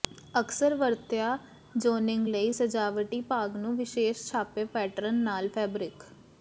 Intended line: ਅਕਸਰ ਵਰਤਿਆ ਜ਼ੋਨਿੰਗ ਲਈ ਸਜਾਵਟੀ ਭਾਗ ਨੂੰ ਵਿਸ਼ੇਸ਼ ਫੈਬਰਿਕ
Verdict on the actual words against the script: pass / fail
fail